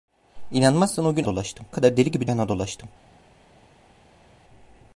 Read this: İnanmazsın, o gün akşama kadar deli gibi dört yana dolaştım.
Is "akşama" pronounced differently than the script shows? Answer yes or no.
yes